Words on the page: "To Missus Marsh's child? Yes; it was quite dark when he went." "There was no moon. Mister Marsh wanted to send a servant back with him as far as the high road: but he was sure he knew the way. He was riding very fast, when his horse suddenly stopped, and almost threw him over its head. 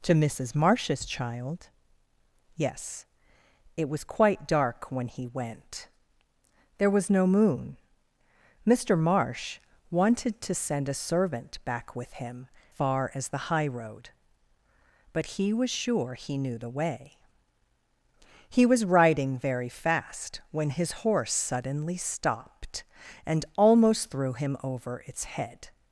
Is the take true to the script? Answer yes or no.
no